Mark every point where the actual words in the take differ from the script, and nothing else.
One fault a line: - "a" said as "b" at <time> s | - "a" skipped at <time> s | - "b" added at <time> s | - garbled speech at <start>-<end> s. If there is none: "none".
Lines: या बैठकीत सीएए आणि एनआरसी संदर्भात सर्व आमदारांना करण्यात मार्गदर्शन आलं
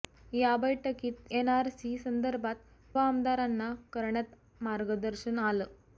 - "सीएए आणि" skipped at 1.3 s
- "सर्व" skipped at 2.6 s